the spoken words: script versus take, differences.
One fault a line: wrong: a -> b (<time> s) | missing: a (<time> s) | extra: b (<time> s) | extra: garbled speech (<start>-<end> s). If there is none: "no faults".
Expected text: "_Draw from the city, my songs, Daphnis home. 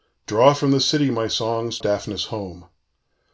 no faults